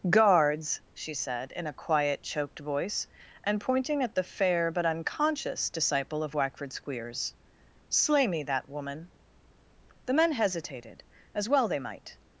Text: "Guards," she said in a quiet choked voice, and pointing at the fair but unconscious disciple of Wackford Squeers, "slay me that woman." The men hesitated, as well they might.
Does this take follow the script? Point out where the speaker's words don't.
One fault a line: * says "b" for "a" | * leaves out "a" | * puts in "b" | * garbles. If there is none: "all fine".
all fine